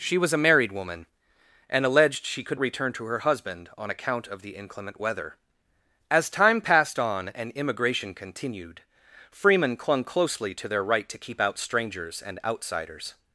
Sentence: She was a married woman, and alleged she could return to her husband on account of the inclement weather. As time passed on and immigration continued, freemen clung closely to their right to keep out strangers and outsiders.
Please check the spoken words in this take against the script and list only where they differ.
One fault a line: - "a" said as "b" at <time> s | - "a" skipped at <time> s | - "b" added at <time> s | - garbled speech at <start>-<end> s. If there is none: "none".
none